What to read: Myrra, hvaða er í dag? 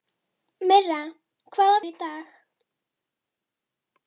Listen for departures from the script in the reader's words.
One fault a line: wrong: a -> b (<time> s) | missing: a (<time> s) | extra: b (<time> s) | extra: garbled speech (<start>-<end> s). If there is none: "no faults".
no faults